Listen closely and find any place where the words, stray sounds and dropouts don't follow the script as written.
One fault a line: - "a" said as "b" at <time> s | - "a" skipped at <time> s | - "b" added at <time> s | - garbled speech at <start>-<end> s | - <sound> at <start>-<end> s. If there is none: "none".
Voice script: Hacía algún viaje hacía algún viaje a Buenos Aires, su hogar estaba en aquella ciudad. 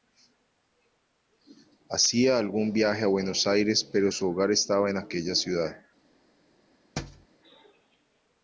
- "hacía algún viaje" skipped at 3.0 s
- "pero" added at 3.8 s
- thud at 7.0-7.3 s